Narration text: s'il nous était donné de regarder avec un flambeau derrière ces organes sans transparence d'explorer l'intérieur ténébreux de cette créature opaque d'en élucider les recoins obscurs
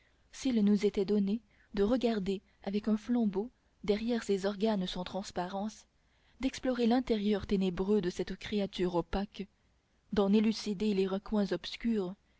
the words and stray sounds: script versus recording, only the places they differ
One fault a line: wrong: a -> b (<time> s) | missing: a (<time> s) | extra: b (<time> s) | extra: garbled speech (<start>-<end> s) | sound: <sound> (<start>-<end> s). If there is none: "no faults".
no faults